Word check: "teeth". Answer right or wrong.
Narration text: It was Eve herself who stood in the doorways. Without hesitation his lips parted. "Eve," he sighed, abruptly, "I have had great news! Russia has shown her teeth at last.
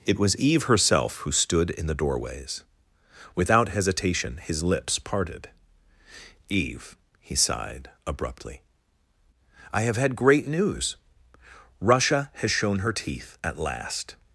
right